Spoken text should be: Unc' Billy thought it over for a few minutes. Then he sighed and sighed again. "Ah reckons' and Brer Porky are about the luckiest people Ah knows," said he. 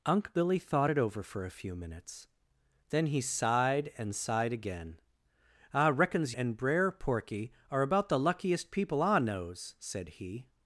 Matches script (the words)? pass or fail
pass